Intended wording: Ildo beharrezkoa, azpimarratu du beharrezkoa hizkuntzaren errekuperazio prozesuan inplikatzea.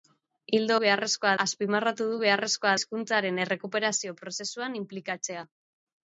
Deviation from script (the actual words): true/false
false